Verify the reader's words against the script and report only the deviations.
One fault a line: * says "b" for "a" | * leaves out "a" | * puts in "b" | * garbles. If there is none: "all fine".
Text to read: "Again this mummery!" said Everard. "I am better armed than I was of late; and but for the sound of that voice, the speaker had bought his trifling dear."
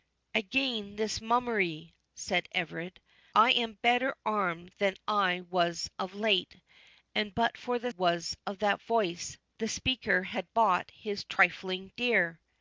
* says "was" for "sound"